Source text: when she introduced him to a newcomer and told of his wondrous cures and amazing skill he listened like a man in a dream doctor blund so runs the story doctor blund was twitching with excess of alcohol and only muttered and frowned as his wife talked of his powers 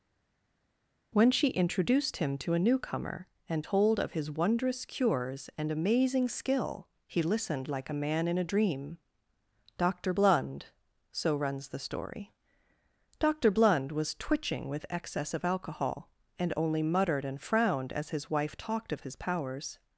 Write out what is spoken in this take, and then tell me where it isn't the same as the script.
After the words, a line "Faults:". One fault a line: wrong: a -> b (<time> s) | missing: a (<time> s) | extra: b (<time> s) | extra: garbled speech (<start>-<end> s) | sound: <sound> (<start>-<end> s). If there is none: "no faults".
when she introduced him to a newcomer and told of his wondrous cures and amazing skill he listened like a man in a dream doctor blund so runs the story doctor blund was twitching with excess of alcohol and only muttered and frowned as his wife talked of his powers
Faults:
no faults